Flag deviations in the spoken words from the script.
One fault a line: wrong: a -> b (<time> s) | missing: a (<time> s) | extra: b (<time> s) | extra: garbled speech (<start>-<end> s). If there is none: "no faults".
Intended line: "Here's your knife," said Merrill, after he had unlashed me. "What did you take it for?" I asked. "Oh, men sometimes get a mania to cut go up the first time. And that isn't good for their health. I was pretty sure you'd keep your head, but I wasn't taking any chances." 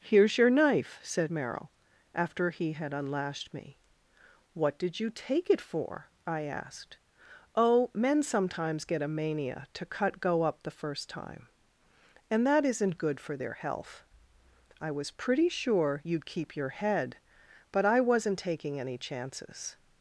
no faults